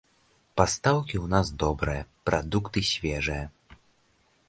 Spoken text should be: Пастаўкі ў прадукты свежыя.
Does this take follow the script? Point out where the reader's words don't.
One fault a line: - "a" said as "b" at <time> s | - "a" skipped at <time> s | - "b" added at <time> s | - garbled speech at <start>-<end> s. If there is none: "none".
- "нас добрыя" added at 1.4 s